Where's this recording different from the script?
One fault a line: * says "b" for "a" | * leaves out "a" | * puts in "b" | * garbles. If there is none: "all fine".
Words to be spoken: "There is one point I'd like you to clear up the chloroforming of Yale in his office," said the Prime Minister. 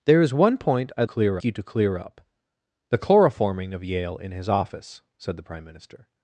* says "clear" for "like"